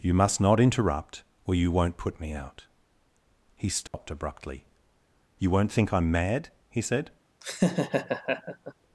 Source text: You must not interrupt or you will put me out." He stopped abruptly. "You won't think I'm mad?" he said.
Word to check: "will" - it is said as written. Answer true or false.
false